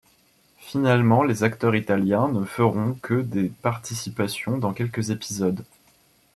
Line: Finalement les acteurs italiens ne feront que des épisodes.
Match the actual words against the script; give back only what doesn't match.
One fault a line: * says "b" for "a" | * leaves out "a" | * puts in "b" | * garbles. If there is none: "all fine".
* puts in "participations dans quelques"